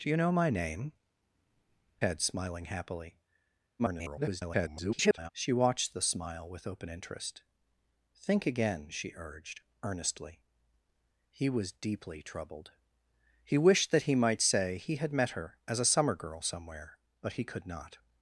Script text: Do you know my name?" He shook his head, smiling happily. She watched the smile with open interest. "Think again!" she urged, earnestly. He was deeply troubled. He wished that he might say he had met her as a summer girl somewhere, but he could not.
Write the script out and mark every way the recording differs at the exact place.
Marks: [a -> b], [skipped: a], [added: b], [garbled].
Do you know my name?" [skipped: He shook his] head, smiling happily. [garbled] She watched the smile with open interest. "Think again!" she urged, earnestly. He was deeply troubled. He wished that he might say he had met her as a summer girl somewhere, but he could not.